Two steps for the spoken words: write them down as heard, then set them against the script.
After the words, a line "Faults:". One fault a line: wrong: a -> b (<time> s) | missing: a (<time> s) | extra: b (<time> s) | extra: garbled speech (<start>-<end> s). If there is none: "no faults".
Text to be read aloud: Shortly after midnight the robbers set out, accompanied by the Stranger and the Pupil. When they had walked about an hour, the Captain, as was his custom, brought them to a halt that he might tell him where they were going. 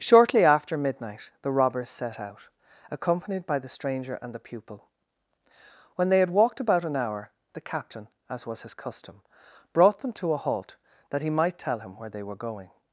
Shortly after midnight the robbers set out, accompanied by the Stranger and the Pupil. When they had walked about an hour, the Captain, as was his custom, brought them to a halt that he might tell him where they were going.
Faults:
no faults